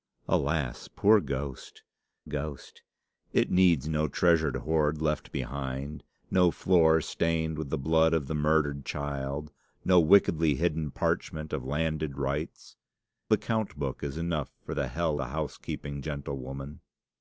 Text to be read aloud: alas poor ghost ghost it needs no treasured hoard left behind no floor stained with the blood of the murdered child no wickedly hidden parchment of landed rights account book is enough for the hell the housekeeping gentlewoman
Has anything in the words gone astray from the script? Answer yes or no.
no